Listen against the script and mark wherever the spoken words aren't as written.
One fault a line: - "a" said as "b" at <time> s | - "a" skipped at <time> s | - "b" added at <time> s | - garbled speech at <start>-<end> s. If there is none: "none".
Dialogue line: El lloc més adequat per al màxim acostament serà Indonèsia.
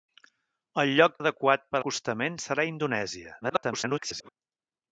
- "més" skipped at 1.2 s
- "al màxim" skipped at 1.8 s
- garbled speech at 3.4-4.3 s